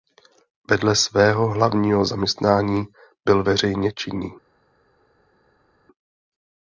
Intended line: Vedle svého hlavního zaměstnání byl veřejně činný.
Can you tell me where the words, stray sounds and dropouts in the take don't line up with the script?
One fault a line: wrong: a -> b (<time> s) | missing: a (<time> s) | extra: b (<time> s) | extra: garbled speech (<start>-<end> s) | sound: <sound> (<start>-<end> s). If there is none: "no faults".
no faults